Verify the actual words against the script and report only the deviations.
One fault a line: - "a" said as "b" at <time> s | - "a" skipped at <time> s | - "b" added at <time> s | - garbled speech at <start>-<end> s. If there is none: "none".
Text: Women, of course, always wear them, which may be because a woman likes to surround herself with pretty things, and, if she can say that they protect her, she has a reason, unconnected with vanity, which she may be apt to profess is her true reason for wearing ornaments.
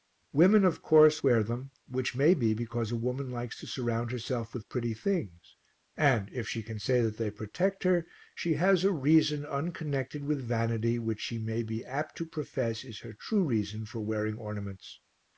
- "always" skipped at 1.2 s